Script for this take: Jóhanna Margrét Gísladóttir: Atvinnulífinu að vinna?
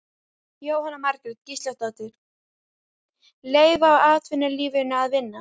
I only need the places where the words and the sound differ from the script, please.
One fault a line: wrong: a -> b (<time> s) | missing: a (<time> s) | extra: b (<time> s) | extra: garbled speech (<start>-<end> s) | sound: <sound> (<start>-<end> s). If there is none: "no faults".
extra: Leyfa (3.6 s)